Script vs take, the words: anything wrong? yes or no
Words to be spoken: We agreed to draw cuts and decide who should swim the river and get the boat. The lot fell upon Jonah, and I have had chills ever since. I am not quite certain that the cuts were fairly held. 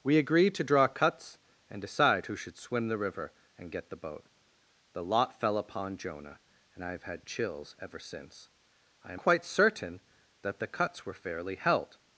yes